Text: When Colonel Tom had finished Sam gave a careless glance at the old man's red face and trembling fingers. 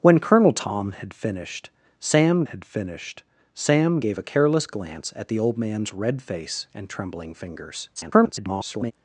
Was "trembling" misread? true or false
false